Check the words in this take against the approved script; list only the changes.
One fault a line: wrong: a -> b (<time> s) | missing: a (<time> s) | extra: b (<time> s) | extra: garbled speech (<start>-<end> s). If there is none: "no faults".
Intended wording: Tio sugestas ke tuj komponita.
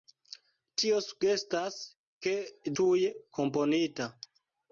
no faults